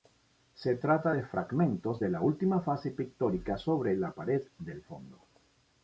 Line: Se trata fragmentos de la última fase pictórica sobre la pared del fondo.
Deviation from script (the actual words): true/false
true